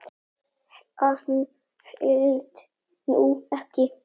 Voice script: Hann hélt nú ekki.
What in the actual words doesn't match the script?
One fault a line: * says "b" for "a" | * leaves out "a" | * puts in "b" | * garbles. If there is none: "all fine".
all fine